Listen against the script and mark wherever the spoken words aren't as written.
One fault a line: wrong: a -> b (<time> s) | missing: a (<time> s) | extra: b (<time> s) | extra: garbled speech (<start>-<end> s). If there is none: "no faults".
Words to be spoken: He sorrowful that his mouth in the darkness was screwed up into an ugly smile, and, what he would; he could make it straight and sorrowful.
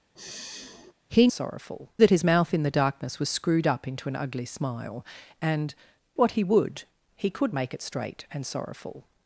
no faults